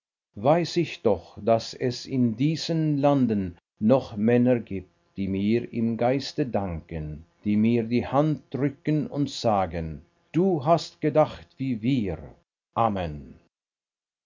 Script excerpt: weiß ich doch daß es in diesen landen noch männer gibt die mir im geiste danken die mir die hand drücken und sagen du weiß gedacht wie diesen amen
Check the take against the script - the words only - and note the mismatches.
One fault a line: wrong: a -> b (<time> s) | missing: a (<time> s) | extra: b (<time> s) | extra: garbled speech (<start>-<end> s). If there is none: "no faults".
wrong: weiß -> hast (10.7 s)
wrong: diesen -> wir (11.8 s)